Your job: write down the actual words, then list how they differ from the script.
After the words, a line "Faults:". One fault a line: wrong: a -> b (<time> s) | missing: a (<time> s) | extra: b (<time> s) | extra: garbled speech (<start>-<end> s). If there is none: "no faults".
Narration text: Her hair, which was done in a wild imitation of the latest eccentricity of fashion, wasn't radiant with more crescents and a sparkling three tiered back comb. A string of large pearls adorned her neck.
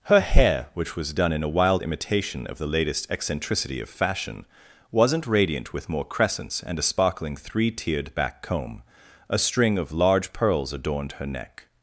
Her hair, which was done in a wild imitation of the latest eccentricity of fashion, wasn't radiant with more crescents and a sparkling three tiered back comb. A string of large pearls adorned her neck.
Faults:
no faults